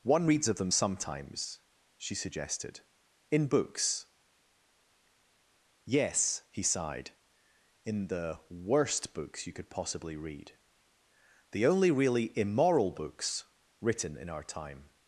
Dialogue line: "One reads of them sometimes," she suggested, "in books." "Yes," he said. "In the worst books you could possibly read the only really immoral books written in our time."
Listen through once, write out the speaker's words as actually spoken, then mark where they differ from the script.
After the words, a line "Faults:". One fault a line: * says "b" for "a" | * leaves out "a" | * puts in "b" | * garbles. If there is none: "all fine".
"One reads of them sometimes," she suggested, "in books." "Yes," he sighed. "In the worst books you could possibly read the only really immoral books written in our time."
Faults:
* says "sighed" for "said"